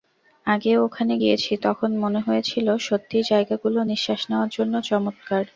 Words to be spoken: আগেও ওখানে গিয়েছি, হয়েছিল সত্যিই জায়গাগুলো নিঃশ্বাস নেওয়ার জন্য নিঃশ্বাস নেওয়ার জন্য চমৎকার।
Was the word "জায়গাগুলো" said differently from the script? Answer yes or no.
no